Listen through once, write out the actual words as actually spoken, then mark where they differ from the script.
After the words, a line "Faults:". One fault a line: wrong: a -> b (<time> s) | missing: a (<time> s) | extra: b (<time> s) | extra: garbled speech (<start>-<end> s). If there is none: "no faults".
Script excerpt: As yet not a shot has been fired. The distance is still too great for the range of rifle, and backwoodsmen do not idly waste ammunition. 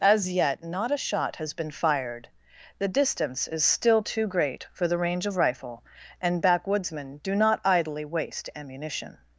As yet not a shot has been fired. The distance is still too great for the range of rifle, and backwoodsmen do not idly waste ammunition.
Faults:
no faults